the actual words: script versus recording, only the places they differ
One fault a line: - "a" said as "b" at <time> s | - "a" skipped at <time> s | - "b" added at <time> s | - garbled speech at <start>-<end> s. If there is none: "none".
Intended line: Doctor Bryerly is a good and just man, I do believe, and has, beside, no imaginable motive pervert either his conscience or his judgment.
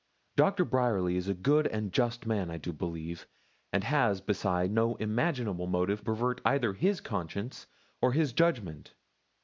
none